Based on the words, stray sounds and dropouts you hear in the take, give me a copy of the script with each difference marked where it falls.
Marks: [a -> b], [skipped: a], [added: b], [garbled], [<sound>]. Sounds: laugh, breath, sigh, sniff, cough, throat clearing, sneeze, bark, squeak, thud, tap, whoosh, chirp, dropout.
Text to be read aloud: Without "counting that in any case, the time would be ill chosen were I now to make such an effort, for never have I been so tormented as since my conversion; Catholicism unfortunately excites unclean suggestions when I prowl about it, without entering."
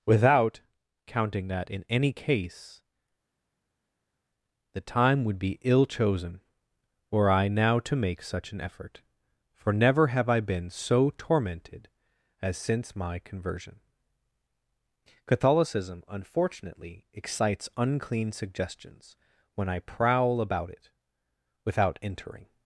Without "counting that in any case, the time would be ill chosen were I now to make such an effort, for never have I been so tormented as since my conversion; Catholicism unfortunately excites unclean suggestions when I prowl about it, without entering."